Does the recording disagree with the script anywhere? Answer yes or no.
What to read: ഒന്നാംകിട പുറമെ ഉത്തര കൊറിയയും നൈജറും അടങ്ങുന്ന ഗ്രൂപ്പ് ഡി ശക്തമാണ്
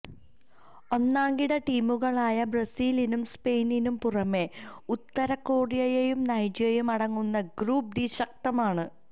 yes